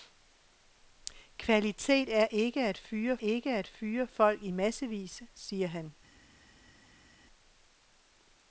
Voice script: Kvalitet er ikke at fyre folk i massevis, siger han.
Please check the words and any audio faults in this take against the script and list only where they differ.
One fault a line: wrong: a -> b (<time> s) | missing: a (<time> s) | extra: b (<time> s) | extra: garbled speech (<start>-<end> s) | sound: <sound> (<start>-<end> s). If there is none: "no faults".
extra: ikke at fyre (3.2 s)